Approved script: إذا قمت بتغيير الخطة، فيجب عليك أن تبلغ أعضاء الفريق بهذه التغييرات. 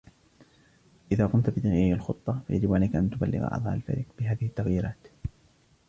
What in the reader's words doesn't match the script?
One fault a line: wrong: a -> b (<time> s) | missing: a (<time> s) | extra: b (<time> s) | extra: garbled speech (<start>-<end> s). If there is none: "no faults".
no faults